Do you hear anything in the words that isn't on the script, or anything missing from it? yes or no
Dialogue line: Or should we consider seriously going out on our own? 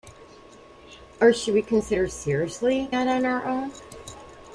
yes